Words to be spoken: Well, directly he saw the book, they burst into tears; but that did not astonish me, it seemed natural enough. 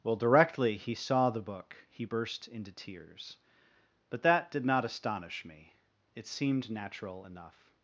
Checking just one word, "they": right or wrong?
wrong